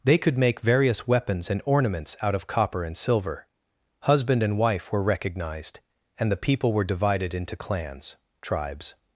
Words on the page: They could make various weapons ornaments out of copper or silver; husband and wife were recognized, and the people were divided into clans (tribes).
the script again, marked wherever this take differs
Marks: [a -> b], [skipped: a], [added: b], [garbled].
They could make various weapons [added: and] ornaments out of copper [or -> and] silver; husband and wife were recognized, and the people were divided into clans (tribes).